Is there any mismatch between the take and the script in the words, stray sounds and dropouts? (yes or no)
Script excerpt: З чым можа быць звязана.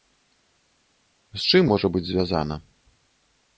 no